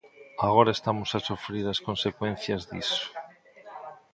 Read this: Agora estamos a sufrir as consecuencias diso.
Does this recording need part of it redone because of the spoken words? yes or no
no